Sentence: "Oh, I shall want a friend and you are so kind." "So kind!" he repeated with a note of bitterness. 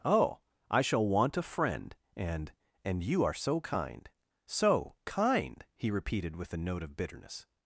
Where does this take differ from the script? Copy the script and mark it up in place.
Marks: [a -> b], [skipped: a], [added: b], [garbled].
"Oh, I shall want a friend and [added: and] you are so kind." "So kind!" he repeated with a note of bitterness.